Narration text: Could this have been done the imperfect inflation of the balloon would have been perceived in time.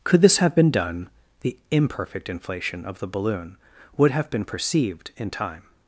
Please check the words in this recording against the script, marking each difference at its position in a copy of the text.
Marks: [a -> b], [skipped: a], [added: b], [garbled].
Could this have been done the imperfect inflation of the balloon would have been perceived in time.